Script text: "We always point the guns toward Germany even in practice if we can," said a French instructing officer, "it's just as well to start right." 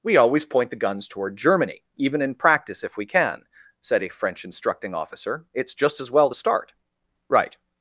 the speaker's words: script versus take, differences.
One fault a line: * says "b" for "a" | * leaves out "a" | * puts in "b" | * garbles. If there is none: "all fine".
all fine